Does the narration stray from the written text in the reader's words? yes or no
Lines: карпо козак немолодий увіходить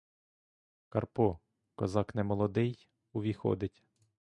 no